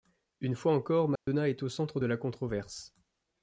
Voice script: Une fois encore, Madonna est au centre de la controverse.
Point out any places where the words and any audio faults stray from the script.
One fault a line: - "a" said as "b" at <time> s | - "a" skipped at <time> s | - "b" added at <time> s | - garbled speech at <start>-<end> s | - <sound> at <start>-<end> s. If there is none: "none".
- dropout at 1.2-1.3 s